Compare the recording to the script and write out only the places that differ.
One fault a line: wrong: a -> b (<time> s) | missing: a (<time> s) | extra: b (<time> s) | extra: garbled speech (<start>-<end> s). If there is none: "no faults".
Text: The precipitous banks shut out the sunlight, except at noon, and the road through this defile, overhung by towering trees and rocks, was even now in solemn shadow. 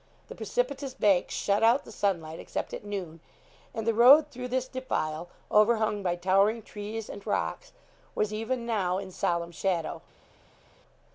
no faults